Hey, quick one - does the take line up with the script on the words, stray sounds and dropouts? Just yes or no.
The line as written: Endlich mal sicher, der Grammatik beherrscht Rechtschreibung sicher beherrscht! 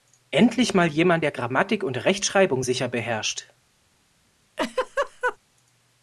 no